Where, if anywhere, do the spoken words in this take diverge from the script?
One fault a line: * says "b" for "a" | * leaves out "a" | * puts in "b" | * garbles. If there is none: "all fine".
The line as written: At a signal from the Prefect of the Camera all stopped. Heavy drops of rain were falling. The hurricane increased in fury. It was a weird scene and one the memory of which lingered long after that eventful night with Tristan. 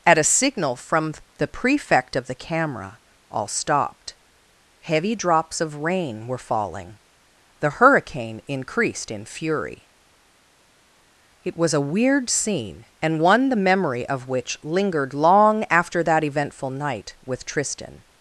all fine